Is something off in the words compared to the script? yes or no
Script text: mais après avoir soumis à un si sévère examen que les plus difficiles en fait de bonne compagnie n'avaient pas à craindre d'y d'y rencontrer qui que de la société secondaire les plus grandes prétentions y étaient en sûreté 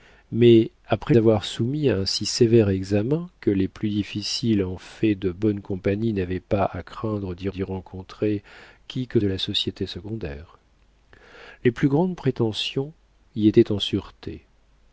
no